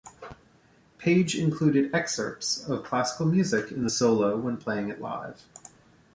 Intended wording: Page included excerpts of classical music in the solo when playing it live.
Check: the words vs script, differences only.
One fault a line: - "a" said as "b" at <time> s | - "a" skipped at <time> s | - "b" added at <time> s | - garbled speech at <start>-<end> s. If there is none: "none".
none